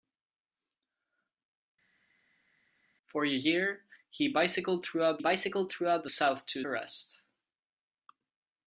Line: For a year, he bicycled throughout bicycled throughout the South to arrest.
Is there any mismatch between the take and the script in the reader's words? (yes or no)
no